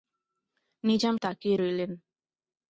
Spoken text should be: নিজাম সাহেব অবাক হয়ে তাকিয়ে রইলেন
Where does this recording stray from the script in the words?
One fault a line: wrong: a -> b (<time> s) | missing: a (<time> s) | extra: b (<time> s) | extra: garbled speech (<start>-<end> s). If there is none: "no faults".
missing: সাহেব অবাক হয়ে (1.1 s)